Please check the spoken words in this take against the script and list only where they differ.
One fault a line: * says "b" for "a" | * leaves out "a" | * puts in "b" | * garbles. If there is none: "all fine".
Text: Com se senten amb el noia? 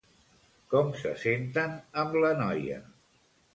* says "la" for "el"